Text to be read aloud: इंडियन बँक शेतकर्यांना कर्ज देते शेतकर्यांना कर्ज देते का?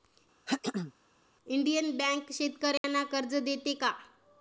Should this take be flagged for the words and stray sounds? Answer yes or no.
yes